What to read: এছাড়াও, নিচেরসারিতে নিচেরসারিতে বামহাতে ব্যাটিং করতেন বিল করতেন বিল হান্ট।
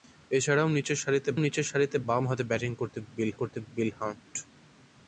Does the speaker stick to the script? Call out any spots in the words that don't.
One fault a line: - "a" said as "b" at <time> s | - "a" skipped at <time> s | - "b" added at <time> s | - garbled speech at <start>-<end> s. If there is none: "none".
none